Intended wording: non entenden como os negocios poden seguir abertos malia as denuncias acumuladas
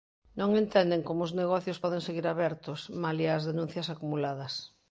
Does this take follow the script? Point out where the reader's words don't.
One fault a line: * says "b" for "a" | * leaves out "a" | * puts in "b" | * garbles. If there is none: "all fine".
all fine